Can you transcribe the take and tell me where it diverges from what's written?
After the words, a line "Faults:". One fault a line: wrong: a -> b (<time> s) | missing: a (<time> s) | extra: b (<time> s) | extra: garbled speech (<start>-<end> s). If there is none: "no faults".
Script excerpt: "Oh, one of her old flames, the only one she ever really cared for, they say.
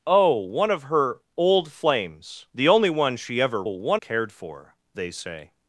"Oh, one of her old flames, the only one she ever one cared for, they say.
Faults:
wrong: really -> one (3.7 s)